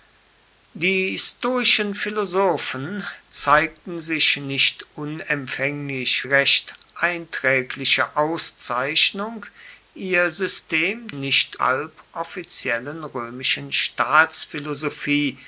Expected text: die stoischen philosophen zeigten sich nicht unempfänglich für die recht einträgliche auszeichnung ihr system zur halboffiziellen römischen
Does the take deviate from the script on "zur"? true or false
true